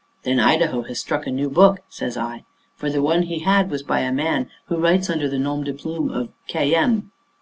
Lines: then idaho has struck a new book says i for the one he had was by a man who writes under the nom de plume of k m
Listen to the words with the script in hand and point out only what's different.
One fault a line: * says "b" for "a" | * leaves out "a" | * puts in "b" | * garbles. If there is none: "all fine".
all fine